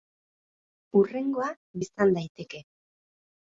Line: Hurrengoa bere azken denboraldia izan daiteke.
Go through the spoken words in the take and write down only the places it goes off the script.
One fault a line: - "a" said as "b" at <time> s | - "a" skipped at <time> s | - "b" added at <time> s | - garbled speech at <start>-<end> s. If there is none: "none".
- "bere azken denboraldia" skipped at 1.5 s